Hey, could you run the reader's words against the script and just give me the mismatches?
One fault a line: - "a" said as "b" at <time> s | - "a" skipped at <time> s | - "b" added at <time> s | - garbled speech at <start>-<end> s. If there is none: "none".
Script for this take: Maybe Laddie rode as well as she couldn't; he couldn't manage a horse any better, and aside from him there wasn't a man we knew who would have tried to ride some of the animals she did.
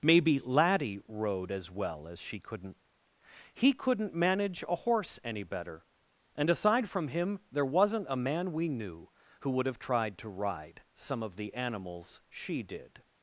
none